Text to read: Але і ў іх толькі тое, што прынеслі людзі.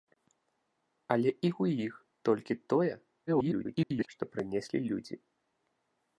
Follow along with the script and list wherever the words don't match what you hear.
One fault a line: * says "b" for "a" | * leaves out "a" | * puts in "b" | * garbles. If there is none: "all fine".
* garbles